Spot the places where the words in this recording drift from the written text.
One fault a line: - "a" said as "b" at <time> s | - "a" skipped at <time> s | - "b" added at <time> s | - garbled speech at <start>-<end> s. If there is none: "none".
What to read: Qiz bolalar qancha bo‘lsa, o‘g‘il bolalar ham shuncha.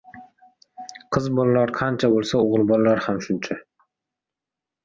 none